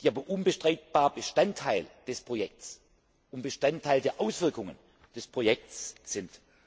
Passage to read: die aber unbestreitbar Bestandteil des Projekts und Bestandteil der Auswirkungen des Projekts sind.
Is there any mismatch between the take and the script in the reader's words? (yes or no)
no